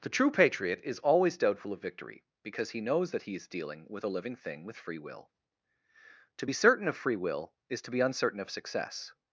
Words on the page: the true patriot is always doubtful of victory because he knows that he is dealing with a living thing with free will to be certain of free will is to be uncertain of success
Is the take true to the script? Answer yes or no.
yes